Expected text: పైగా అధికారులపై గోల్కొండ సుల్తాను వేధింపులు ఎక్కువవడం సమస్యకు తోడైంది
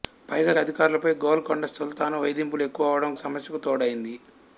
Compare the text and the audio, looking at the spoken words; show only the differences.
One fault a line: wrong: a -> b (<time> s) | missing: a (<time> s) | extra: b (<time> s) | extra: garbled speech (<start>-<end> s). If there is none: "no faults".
no faults